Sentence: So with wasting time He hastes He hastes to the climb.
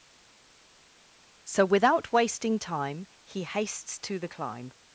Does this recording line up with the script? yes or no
no